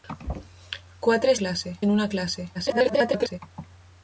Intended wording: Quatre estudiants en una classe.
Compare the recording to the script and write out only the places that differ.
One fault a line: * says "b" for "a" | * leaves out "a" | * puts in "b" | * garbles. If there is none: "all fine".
* says "classe" for "estudiants"
* garbles